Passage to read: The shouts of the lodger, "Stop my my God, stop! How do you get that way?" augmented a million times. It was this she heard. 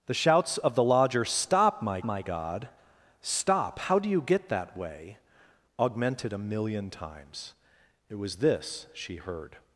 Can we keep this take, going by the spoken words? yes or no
yes